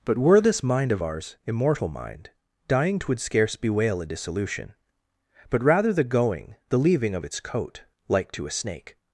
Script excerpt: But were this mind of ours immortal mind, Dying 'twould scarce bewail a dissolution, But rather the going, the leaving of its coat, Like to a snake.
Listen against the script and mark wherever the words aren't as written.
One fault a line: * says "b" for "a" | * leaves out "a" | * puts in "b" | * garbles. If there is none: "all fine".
all fine